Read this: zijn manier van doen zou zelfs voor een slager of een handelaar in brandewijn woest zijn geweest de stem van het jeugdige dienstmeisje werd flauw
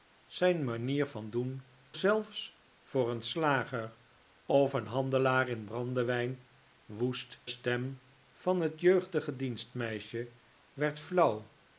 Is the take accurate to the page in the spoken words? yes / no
no